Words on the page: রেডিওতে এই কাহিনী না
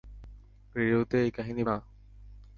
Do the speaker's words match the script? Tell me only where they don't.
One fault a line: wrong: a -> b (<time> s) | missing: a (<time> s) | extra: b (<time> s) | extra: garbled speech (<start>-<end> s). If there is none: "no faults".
no faults